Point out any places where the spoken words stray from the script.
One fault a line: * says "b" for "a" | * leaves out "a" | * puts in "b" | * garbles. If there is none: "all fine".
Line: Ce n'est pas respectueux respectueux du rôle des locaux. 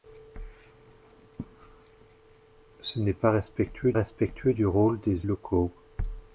all fine